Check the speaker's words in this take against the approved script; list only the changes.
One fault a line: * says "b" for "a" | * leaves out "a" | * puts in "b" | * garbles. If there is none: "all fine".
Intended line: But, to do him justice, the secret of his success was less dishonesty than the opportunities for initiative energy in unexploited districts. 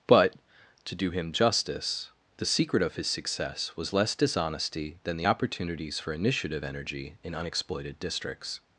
all fine